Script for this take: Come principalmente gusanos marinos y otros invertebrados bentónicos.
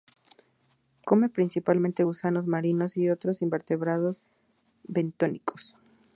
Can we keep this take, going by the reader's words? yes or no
yes